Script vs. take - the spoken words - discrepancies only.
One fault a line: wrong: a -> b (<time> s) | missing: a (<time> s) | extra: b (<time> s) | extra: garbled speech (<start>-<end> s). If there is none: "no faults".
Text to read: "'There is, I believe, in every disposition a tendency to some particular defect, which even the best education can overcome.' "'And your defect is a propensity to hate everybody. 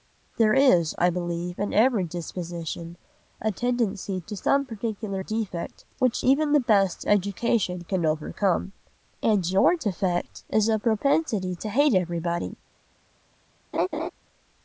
no faults